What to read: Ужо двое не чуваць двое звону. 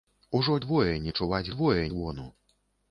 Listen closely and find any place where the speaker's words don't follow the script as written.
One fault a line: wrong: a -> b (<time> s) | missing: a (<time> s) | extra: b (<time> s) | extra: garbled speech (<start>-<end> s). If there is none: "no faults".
no faults